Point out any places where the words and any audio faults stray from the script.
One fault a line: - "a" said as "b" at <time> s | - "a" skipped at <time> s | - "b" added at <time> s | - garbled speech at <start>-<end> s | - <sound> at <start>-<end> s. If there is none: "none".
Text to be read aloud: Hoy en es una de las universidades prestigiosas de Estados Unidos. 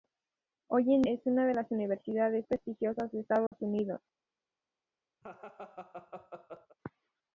- dropout at 3.5-3.5 s
- laugh at 5.2-6.8 s